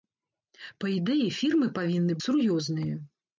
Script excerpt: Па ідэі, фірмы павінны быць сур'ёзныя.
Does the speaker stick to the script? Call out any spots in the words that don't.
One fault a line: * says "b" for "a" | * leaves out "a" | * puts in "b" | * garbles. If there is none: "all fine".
* leaves out "быць"